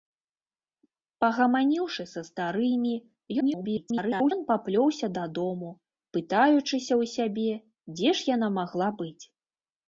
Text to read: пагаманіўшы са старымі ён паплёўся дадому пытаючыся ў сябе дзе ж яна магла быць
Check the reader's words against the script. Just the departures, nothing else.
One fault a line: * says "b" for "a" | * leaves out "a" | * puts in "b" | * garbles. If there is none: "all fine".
* garbles